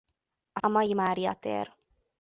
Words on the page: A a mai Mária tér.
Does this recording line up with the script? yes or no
yes